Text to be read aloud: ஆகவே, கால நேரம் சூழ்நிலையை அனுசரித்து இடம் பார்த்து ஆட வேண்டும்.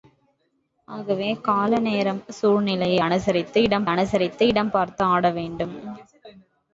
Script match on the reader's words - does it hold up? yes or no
no